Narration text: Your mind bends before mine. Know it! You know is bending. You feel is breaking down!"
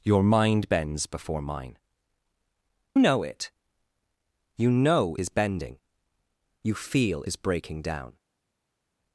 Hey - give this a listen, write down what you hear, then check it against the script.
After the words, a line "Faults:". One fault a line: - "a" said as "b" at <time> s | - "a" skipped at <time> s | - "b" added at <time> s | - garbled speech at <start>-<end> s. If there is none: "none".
Your mind bends before mine. Know it! You know is bending. You feel is breaking down!"
Faults:
none